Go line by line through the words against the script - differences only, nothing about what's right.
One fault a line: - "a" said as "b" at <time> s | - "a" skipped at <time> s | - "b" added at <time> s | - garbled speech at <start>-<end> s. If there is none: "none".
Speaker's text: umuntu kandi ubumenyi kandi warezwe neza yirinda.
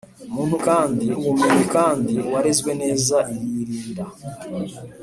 none